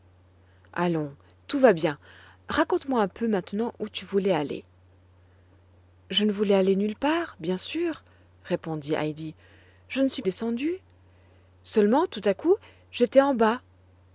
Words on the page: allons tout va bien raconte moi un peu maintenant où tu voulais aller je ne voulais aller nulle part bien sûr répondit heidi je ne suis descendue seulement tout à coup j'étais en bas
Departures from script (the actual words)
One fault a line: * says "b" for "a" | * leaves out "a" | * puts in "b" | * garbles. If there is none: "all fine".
all fine